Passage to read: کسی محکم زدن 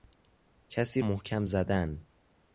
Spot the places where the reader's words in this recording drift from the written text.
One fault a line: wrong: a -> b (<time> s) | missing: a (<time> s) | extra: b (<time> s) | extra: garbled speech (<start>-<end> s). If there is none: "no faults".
no faults